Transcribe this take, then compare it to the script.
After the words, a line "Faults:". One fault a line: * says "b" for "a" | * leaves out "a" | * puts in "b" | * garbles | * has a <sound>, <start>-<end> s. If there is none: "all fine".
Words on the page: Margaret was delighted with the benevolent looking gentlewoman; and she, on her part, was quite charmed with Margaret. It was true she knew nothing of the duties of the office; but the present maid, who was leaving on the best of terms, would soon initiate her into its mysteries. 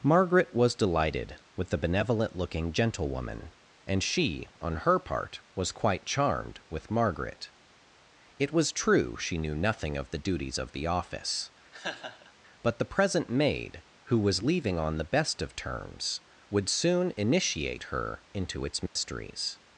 Margaret was delighted with the benevolent looking gentlewoman; and she, on her part, was quite charmed with Margaret. It was true she knew nothing of the duties of the office; but the present maid, who was leaving on the best of terms, would soon initiate her into its mysteries.
Faults:
* has a laugh, 11.7-12.3 s
* has a dropout, 18.9-19.0 s